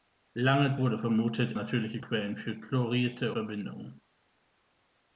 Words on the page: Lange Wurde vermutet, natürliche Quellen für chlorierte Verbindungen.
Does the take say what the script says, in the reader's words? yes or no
yes